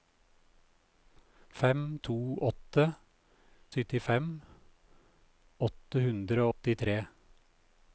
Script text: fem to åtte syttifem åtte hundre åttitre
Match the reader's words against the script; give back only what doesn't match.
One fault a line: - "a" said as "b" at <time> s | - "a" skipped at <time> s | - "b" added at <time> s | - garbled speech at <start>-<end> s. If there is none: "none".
none